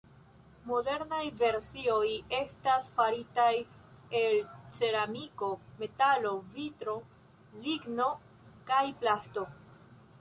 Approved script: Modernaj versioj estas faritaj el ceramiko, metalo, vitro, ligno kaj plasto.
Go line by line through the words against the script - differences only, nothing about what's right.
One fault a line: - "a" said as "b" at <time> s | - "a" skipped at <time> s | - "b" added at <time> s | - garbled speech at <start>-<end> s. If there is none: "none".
none